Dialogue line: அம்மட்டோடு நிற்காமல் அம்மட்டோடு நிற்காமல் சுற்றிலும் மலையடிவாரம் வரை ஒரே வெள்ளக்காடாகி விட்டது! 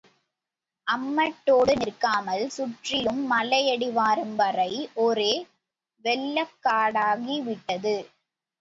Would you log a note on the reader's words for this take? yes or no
yes